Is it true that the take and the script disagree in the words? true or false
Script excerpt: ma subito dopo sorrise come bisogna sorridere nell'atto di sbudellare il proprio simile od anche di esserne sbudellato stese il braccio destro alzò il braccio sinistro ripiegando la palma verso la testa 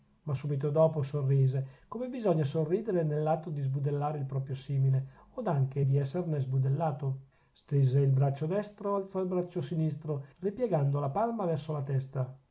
false